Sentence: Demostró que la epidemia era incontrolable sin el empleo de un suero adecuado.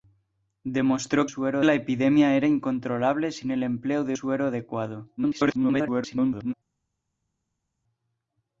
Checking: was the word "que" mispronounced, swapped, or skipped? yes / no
yes